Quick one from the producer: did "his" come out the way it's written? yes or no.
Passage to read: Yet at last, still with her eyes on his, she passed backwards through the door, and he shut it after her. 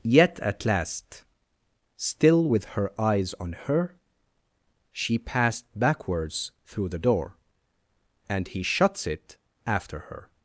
no